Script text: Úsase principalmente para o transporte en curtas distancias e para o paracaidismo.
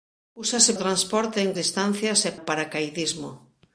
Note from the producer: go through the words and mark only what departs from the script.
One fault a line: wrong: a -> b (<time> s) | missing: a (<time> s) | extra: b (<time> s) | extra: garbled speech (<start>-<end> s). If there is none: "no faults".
missing: principalmente para (0.7 s)
missing: curtas (1.5 s)
missing: para (2.3 s)